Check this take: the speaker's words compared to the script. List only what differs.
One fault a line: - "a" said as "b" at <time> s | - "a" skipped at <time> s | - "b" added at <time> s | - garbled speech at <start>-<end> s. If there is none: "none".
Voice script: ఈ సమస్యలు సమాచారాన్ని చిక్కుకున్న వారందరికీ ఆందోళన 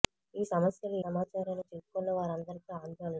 none